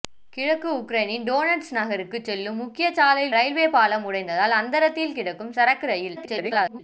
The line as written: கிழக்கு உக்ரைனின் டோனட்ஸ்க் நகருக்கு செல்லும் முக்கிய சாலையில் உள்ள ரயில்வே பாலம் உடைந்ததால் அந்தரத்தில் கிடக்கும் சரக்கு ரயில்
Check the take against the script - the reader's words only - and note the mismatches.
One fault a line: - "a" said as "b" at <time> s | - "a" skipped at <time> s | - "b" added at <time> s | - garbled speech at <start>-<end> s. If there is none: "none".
- "உள்ள" skipped at 3.4 s
- garbled speech at 6.2-6.8 s